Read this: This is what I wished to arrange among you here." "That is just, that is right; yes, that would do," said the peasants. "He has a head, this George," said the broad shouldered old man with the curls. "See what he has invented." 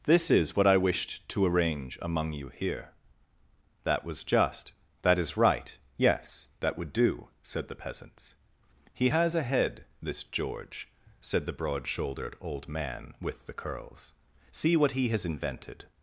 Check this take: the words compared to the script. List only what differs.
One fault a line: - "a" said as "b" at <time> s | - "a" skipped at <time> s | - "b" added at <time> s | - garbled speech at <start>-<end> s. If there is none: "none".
- "is" said as "was" at 4.0 s